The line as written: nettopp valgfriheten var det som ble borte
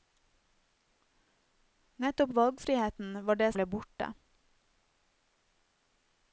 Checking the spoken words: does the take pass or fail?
fail